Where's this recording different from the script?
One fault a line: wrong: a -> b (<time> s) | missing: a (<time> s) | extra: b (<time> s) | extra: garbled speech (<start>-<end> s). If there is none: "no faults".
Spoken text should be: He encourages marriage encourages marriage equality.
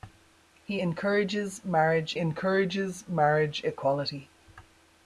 no faults